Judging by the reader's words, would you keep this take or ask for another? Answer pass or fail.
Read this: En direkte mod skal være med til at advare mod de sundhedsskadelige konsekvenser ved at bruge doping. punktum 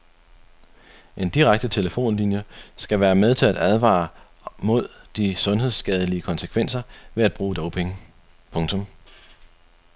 fail